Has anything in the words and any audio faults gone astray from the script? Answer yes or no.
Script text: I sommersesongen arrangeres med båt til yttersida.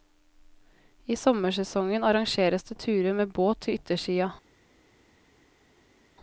yes